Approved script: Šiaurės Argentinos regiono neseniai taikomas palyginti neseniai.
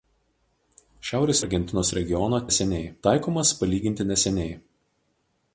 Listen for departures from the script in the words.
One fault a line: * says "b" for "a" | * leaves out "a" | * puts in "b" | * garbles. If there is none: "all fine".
all fine